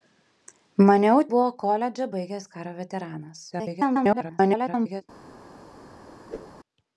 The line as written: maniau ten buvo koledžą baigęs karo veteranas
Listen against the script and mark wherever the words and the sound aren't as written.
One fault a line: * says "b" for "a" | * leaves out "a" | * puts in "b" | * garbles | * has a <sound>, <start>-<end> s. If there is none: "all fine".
* leaves out "ten"
* garbles
* has a whoosh, 6.3-6.6 s